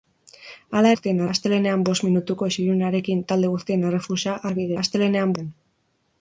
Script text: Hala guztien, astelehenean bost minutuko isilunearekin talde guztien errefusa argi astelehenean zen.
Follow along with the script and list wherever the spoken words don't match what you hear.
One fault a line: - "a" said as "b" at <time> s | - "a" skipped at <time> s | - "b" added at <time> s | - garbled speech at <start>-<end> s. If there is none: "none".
none